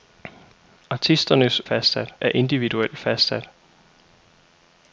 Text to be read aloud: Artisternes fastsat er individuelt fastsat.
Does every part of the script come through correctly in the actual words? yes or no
yes